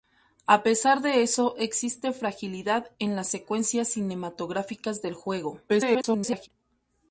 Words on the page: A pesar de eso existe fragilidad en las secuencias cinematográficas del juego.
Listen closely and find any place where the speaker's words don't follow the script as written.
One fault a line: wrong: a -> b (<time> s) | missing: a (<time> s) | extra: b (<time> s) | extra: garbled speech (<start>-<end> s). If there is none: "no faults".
extra: garbled speech (5.7-6.5 s)